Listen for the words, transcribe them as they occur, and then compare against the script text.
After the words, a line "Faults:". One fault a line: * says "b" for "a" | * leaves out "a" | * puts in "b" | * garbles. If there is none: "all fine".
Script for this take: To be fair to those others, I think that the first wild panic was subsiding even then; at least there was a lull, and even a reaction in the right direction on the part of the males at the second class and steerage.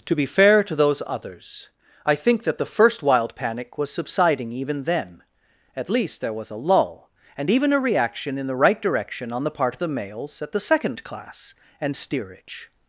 To be fair to those others, I think that the first wild panic was subsiding even then; at least there was a lull, and even a reaction in the right direction on the part of the males at the second class and steerage.
Faults:
all fine